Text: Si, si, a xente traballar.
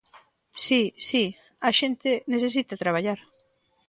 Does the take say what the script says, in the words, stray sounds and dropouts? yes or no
no